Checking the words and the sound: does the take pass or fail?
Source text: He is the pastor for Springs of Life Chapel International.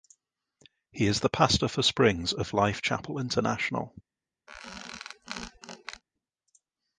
fail